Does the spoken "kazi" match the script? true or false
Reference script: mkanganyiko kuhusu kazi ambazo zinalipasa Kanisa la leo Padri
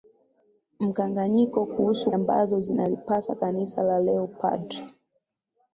false